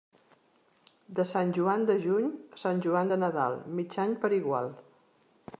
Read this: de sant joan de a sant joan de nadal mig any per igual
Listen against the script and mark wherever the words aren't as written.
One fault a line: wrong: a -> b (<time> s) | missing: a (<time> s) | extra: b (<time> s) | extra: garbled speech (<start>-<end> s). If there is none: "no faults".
extra: juny (2.0 s)